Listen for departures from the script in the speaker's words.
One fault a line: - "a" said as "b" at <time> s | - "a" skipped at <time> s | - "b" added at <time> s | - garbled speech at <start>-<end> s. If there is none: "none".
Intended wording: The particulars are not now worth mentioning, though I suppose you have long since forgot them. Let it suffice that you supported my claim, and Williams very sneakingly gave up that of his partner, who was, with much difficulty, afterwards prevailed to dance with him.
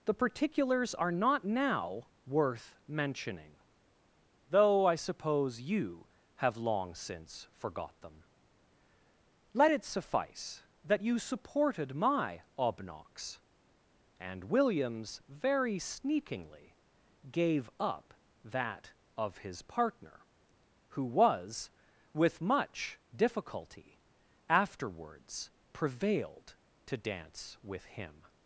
- "claim" said as "obnox" at 12.6 s